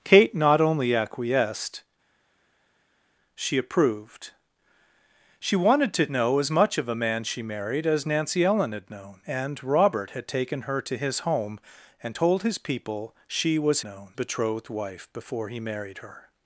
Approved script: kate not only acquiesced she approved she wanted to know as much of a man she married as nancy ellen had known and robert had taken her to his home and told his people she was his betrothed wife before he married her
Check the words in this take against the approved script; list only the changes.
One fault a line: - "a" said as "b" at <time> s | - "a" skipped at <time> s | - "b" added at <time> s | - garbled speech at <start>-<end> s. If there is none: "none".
- "his" said as "known" at 13.8 s